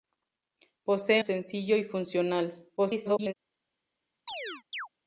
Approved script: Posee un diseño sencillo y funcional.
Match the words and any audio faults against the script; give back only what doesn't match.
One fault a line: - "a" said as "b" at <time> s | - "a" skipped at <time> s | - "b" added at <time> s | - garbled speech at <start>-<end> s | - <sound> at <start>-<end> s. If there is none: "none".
- "un diseño" skipped at 1.2 s
- garbled speech at 2.8-3.3 s
- chirp at 4.3-4.9 s